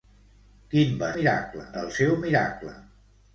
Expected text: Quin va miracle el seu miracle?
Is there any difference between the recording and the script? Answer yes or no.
no